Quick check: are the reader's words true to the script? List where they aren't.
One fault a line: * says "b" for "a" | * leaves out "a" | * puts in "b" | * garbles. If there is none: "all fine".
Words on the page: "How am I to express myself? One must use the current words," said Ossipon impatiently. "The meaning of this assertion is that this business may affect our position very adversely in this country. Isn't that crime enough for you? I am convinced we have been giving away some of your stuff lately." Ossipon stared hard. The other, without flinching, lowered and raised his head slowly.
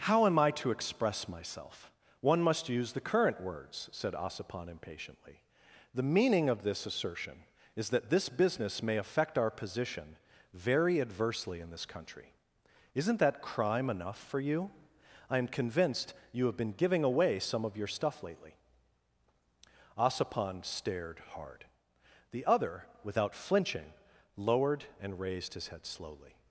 * says "you" for "we"